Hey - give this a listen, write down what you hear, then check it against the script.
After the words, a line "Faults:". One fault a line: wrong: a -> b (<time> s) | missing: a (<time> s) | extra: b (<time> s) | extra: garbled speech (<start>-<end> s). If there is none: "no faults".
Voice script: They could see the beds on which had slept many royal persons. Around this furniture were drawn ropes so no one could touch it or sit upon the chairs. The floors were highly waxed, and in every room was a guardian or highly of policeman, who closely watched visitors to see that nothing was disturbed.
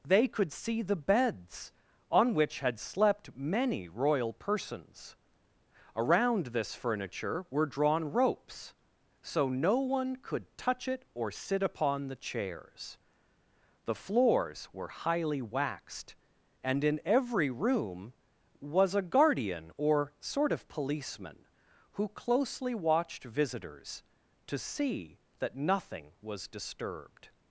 They could see the beds on which had slept many royal persons. Around this furniture were drawn ropes so no one could touch it or sit upon the chairs. The floors were highly waxed, and in every room was a guardian or sort of policeman, who closely watched visitors to see that nothing was disturbed.
Faults:
wrong: highly -> sort (20.2 s)